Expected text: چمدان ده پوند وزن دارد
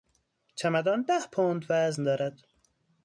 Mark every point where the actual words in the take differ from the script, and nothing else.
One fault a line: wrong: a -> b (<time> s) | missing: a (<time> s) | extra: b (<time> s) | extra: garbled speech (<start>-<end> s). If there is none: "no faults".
no faults